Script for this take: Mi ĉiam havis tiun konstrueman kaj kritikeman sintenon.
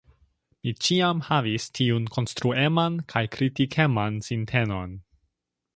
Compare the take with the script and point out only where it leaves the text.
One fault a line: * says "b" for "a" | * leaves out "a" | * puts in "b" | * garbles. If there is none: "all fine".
all fine